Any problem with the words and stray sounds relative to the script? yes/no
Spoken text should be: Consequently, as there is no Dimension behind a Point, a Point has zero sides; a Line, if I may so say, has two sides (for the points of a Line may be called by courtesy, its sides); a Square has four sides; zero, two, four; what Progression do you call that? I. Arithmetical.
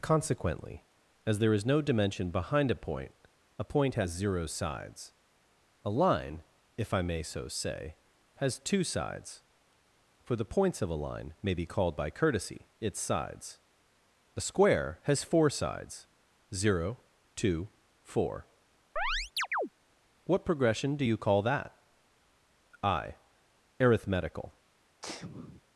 yes